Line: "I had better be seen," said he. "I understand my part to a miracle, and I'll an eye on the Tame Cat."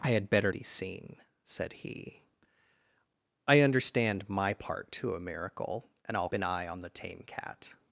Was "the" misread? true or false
false